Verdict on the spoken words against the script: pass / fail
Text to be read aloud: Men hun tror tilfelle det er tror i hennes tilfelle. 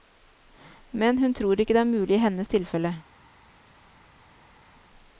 fail